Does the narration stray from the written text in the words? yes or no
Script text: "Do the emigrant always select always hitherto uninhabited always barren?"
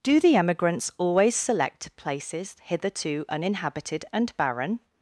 yes